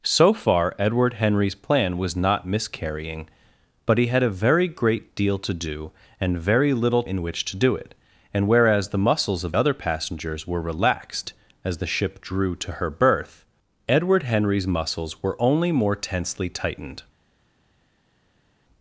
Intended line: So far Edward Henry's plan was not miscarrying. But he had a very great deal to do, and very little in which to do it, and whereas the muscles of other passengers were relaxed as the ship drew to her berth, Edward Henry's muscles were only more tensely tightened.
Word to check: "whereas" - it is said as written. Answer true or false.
true